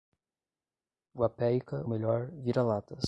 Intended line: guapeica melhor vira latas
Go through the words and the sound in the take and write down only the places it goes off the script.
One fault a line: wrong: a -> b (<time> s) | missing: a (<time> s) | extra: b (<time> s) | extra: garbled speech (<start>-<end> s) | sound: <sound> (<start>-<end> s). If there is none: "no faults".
no faults